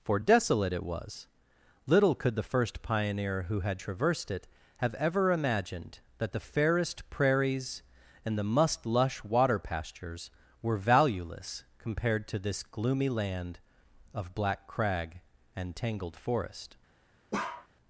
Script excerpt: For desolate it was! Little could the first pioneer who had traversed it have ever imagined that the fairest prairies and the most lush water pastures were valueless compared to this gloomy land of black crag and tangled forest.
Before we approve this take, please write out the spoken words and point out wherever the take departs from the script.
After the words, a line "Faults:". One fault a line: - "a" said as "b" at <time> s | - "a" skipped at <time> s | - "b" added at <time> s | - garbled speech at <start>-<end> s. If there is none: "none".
For desolate it was! Little could the first pioneer who had traversed it have ever imagined that the fairest prairies and the must lush water pastures were valueless compared to this gloomy land of black crag and tangled forest.
Faults:
- "most" said as "must" at 8.4 s